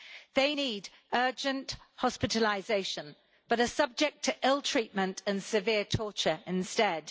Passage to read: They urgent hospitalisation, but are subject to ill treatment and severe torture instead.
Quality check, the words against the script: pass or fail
fail